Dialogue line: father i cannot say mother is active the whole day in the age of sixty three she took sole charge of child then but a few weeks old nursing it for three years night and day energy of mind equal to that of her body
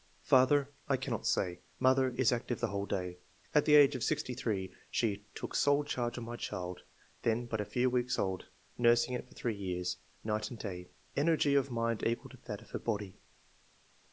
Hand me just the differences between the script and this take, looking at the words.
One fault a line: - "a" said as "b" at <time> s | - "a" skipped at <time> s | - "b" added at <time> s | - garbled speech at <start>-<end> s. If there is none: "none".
- "in" said as "at" at 3.5 s
- "my" added at 6.2 s